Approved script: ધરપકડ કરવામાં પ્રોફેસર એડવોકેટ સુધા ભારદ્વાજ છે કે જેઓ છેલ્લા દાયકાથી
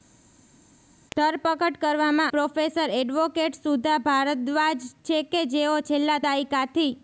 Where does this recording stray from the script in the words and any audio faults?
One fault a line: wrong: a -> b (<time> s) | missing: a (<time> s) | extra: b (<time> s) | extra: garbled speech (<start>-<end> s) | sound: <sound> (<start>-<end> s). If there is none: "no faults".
no faults